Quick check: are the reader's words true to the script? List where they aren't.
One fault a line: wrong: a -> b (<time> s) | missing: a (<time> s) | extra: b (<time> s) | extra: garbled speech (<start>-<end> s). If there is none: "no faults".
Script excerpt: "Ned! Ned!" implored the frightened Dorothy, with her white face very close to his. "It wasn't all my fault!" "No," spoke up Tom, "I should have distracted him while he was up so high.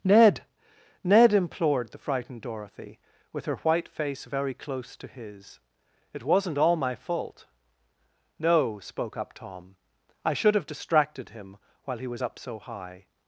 no faults